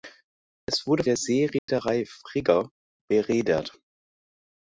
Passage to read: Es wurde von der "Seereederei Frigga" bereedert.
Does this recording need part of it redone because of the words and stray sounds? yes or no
yes